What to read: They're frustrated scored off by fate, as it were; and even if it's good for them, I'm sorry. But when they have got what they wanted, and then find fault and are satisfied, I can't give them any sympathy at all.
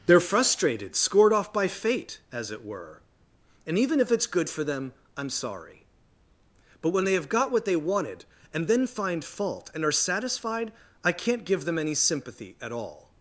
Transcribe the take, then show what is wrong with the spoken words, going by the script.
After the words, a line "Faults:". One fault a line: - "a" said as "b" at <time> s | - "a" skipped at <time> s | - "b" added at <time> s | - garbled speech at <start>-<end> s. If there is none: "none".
They're frustrated scored off by fate, as it were; and even if it's good for them, I'm sorry. But when they have got what they wanted, and then find fault and are satisfied, I can't give them any sympathy at all.
Faults:
none